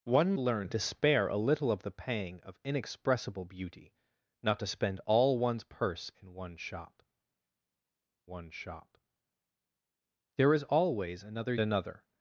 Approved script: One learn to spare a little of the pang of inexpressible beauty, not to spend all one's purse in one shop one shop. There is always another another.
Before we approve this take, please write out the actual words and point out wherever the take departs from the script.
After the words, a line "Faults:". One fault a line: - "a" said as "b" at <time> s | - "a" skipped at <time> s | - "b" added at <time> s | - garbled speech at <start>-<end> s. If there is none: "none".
One learn to spare a little of the pang of inexpressible beauty, not to spend all one's purse in one shop one shop. There is always another another.
Faults:
none